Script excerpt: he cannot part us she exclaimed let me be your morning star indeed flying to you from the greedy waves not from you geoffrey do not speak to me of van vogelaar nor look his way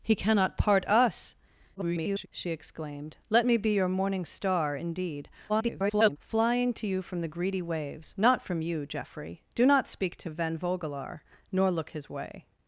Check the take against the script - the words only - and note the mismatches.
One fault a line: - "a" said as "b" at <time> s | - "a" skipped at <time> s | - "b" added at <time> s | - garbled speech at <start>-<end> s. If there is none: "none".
- garbled speech at 1.8-2.3 s
- garbled speech at 5.5-6.2 s
- "me" skipped at 10.3 s